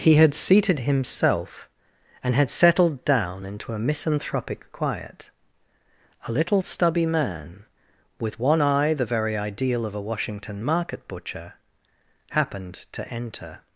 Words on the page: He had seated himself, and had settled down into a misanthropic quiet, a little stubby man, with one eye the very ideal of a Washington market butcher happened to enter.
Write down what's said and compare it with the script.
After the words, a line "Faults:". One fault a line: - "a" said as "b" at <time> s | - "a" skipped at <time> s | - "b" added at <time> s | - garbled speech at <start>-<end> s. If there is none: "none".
He had seated himself, and had settled down into a misanthropic quiet, a little stubby man, with one eye the very ideal of a Washington market butcher happened to enter.
Faults:
none